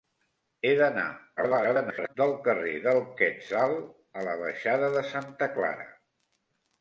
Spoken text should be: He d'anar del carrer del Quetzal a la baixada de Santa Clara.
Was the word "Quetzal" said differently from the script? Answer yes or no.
no